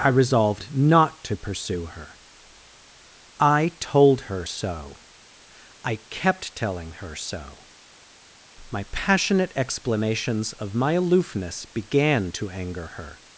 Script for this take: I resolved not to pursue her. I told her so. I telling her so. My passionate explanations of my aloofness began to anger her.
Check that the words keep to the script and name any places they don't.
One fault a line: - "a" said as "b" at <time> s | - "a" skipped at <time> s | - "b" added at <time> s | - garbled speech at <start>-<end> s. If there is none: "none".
- "kept" added at 6.1 s